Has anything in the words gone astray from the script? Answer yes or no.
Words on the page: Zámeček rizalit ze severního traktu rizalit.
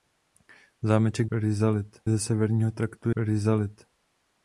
no